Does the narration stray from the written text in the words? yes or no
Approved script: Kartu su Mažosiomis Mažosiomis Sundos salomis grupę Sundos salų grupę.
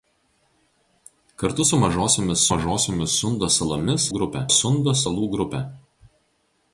no